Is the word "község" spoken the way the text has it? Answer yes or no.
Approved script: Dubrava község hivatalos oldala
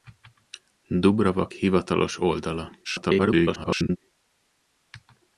no